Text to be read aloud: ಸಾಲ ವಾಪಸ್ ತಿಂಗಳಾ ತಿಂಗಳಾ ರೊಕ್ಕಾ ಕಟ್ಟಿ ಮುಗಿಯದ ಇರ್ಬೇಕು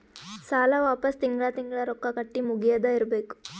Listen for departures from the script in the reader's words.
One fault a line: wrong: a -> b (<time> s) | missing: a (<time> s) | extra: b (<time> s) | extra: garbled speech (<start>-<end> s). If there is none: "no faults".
no faults